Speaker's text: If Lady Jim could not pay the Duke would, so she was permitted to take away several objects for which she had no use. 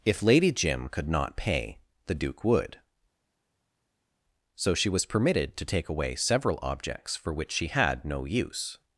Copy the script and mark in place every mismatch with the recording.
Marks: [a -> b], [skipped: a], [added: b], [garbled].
If Lady Jim could not pay the Duke would, so she was permitted to take away several objects for which she had no use.